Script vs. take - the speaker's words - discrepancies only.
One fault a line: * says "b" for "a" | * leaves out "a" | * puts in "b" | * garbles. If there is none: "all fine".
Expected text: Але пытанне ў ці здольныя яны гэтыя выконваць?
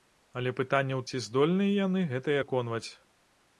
all fine